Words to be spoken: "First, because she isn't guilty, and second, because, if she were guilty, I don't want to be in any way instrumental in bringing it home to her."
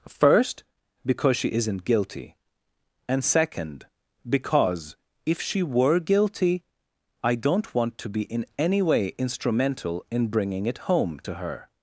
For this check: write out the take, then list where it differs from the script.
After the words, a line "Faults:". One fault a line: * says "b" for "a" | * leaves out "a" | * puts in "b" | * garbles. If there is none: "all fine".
"First, because she isn't guilty, and second, because, if she were guilty, I don't want to be in any way instrumental in bringing it home to her."
Faults:
all fine